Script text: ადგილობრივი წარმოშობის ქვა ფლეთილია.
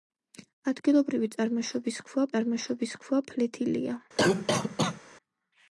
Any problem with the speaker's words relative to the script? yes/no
yes